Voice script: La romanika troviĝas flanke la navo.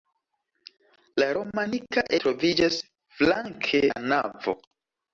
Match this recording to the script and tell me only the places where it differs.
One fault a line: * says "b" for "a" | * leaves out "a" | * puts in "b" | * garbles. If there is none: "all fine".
all fine